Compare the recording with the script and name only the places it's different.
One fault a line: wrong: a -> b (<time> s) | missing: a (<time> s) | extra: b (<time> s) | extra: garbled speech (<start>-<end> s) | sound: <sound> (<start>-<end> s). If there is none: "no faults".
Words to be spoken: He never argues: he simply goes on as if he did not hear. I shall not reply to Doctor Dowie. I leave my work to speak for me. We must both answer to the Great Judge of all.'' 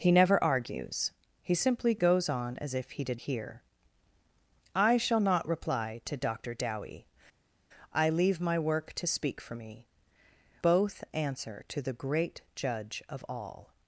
missing: not (3.2 s)
missing: We must (9.9 s)